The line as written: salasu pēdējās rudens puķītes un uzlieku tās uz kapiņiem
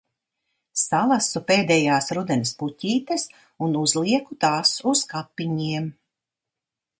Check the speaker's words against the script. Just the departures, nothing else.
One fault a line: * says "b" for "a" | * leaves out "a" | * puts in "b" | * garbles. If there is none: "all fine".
all fine